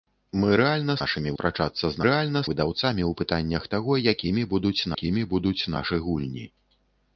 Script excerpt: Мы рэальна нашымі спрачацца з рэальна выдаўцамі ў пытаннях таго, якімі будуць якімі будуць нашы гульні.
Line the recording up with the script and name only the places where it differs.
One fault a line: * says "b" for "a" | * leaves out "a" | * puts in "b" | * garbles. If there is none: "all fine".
all fine